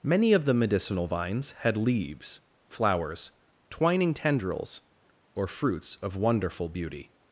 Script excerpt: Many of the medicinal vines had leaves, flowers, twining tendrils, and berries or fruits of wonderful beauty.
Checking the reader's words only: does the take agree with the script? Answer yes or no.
no